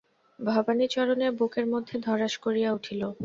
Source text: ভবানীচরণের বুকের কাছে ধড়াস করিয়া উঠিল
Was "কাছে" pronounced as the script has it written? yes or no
no